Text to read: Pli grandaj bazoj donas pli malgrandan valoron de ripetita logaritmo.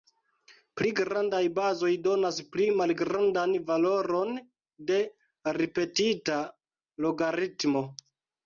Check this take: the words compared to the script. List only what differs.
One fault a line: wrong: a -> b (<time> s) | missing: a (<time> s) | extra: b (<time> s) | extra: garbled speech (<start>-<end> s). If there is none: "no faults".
no faults